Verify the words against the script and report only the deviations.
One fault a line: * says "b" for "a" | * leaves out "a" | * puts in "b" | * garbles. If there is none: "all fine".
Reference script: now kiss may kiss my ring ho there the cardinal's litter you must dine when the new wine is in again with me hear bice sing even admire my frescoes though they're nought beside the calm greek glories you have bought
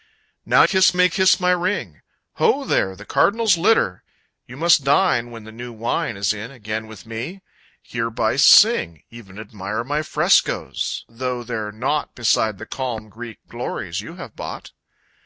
all fine